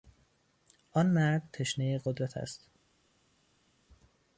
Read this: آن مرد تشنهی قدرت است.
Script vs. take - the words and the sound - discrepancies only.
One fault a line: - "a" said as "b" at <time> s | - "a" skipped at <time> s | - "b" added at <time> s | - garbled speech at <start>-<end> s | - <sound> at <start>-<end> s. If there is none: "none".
none